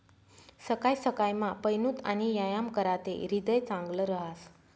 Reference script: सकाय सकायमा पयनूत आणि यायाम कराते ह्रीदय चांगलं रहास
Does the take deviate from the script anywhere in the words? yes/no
no